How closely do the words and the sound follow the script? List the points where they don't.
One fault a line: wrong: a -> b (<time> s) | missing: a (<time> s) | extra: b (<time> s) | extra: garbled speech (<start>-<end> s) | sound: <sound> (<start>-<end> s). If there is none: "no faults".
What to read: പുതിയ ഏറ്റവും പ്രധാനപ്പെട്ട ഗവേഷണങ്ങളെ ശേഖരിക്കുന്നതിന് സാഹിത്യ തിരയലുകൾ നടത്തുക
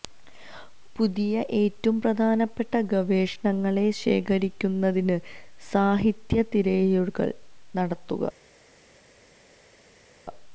no faults